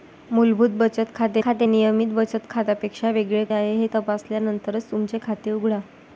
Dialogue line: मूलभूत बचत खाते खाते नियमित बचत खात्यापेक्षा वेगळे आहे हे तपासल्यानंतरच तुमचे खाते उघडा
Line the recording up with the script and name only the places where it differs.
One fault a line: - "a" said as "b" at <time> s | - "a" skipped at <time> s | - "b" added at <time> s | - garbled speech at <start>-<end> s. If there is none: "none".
none